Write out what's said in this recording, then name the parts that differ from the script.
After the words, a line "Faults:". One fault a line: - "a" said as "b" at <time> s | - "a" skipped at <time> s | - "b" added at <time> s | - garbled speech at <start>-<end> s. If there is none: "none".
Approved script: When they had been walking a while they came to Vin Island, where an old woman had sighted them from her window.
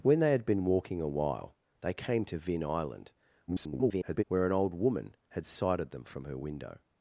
When they had been walking a while they came to Vin Island, [garbled] where an old woman had sighted them from her window.
Faults:
- garbled speech at 3.5-4.2 s